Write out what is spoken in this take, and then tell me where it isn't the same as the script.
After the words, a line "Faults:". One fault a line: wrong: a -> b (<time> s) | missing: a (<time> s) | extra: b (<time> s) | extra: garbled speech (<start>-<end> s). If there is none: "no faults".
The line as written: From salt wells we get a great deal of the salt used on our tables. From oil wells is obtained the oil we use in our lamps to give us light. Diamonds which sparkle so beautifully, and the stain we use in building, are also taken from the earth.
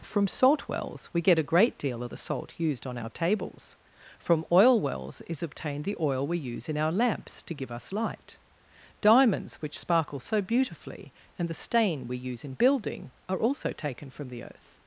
From salt wells we get a great deal of the salt used on our tables. From oil wells is obtained the oil we use in our lamps to give us light. Diamonds which sparkle so beautifully, and the stain we use in building, are also taken from the earth.
Faults:
no faults